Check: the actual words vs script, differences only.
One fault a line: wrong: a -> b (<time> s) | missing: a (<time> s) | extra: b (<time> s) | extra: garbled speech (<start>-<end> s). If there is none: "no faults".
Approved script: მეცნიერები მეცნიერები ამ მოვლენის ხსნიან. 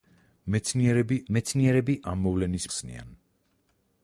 no faults